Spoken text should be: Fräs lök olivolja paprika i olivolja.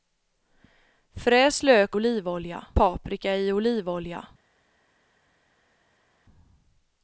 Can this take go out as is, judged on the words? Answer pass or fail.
pass